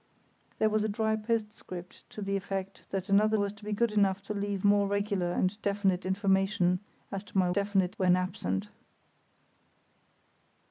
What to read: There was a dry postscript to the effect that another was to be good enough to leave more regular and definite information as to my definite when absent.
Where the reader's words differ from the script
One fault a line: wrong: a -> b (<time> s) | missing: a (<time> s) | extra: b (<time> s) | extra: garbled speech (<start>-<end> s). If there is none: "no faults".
no faults